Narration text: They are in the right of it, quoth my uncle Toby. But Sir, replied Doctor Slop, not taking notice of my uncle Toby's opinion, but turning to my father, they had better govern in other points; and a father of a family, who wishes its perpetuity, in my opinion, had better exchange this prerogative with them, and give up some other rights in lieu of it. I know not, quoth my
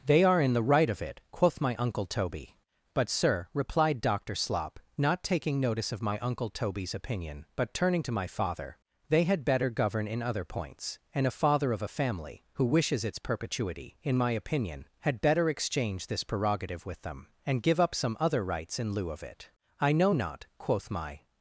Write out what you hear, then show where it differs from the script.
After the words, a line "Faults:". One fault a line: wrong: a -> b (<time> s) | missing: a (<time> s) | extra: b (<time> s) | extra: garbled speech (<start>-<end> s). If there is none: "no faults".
They are in the right of it, quoth my uncle Toby. But Sir, replied Doctor Slop, not taking notice of my uncle Toby's opinion, but turning to my father, they had better govern in other points; and a father of a family, who wishes its perpetuity, in my opinion, had better exchange this prerogative with them, and give up some other rights in lieu of it. I know not, quoth my
Faults:
no faults